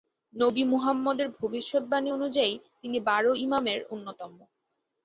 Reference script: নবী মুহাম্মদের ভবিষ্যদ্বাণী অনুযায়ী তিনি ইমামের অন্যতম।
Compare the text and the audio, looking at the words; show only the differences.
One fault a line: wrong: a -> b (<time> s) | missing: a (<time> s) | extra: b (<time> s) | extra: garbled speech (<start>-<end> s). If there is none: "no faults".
extra: বারো (3.0 s)